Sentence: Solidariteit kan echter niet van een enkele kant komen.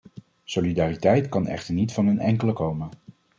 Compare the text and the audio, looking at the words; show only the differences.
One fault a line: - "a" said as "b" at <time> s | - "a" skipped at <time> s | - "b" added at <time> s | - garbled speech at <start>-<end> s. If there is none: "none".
- "kant" skipped at 2.5 s